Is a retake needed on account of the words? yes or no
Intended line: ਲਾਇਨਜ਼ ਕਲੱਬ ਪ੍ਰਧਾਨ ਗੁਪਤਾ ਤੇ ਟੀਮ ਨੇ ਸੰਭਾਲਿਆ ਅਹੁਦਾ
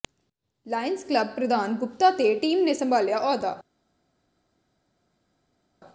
no